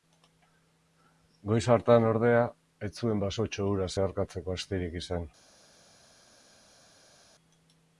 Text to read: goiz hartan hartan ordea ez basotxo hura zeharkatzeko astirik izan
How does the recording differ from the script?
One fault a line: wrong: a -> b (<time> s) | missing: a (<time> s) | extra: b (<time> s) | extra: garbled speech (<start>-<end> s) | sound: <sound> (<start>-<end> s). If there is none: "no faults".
missing: hartan (2.1 s)
extra: zuen (3.0 s)